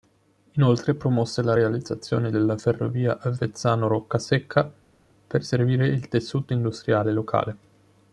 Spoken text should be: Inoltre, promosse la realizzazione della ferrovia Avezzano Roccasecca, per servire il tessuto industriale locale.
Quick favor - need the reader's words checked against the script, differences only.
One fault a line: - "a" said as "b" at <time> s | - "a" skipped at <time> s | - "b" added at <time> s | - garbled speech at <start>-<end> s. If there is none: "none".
none